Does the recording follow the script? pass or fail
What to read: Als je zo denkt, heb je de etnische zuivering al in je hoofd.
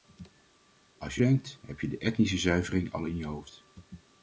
fail